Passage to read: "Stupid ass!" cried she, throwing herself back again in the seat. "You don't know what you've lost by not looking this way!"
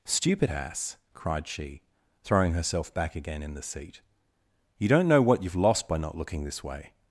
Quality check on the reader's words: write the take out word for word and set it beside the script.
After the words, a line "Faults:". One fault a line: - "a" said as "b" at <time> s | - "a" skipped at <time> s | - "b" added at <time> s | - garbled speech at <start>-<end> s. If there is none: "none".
"Stupid ass!" cried she, throwing herself back again in the seat. "You don't know what you've lost by not looking this way!"
Faults:
none